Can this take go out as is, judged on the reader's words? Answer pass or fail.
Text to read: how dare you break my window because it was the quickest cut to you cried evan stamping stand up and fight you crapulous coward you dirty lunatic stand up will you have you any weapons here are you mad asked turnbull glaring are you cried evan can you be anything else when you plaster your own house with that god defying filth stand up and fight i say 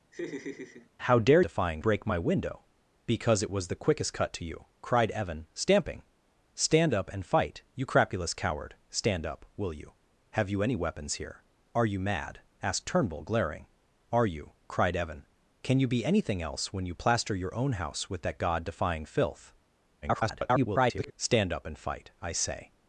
fail